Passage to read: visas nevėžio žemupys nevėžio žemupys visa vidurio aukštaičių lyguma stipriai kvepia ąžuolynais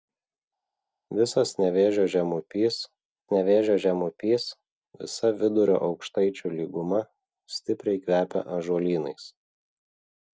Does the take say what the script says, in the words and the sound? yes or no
yes